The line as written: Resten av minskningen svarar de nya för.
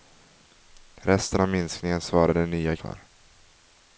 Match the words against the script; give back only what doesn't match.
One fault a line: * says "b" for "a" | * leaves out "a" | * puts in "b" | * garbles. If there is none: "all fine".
all fine